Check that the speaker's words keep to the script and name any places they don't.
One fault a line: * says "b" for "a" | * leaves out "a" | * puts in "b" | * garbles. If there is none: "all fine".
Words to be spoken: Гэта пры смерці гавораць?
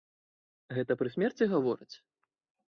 all fine